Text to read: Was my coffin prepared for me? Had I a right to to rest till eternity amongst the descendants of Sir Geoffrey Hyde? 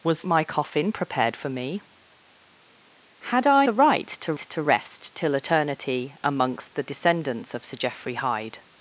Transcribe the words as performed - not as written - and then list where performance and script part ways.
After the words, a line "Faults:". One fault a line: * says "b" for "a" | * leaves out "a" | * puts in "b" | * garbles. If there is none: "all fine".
Was my coffin prepared for me? Had I a right to to rest till eternity amongst the descendants of Sir Geoffrey Hyde?
Faults:
all fine